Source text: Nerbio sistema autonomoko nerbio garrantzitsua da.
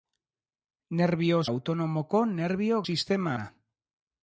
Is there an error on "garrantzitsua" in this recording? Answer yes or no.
yes